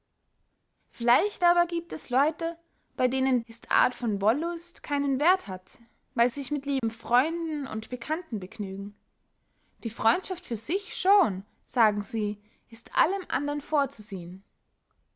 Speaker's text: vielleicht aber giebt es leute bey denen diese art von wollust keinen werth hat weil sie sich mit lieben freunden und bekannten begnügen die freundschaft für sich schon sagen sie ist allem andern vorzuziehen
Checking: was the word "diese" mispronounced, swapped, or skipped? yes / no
yes